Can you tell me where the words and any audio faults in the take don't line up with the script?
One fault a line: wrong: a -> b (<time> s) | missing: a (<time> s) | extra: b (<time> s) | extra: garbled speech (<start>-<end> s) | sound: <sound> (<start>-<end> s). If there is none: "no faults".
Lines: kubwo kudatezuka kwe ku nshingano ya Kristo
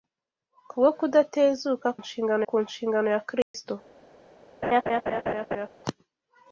wrong: kwe -> nshingano (2.0 s)
sound: dropout (3.4-3.5 s)
sound: laugh (4.6-5.7 s)